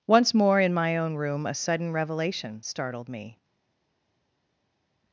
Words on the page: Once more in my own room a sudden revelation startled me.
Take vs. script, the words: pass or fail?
pass